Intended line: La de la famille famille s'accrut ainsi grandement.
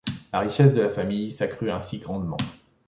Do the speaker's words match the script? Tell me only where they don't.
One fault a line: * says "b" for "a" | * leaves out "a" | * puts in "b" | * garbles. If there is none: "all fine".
* puts in "richesse"
* leaves out "famille"